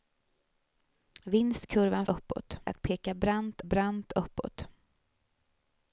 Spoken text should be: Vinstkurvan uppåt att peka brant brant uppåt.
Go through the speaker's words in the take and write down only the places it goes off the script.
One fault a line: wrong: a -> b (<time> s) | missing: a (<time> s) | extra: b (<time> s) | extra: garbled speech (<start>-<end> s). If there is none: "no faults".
no faults